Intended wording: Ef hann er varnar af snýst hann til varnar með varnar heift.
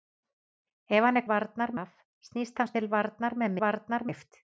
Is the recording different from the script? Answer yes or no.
no